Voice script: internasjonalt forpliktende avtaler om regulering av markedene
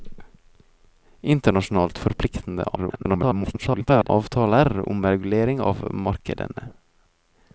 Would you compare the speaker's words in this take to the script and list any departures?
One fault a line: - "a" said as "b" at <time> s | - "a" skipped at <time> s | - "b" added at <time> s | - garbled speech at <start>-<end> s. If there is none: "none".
- garbled speech at 2.8-4.1 s